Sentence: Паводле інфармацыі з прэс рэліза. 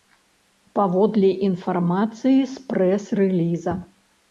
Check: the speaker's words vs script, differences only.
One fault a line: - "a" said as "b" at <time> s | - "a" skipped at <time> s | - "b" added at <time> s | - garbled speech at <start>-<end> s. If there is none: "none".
none